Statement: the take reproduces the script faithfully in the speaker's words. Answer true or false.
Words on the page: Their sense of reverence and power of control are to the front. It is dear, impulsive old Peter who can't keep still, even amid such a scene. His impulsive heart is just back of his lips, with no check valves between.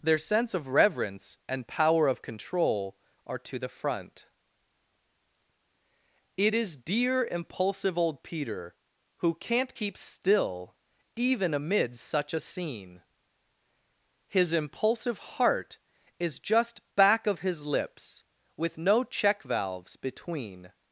true